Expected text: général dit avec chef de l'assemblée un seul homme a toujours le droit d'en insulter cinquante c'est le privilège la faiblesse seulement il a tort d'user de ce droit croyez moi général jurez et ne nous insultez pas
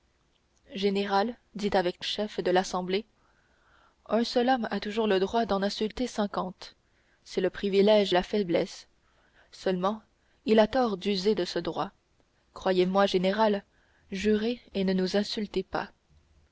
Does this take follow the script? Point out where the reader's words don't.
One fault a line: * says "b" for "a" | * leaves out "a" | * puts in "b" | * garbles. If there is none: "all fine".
all fine